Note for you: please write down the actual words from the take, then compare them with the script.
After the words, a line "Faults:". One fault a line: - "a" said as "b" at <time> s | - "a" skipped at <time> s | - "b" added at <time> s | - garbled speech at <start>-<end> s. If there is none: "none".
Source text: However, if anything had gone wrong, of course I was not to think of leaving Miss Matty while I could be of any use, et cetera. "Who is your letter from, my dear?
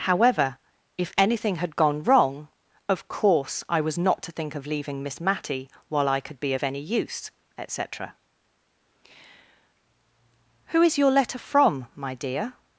However, if anything had gone wrong, of course I was not to think of leaving Miss Matty while I could be of any use, et cetera. "Who is your letter from, my dear?
Faults:
none